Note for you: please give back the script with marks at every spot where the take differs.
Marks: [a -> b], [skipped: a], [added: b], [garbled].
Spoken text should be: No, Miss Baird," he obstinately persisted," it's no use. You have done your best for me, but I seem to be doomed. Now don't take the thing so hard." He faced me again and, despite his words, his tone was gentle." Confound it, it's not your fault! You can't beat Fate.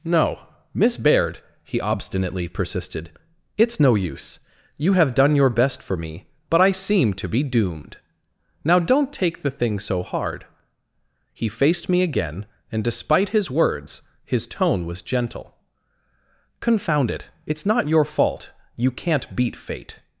No, Miss Baird," he obstinately persisted," it's no use. You have done your best for me, but I seem to be doomed. Now don't take the thing so hard." He faced me again and, despite his words, his tone was gentle." Confound it, it's not your fault! You can't beat Fate.